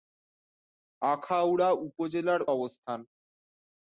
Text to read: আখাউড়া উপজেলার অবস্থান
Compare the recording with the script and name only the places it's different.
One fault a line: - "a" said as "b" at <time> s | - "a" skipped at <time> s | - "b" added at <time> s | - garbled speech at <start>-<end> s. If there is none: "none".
none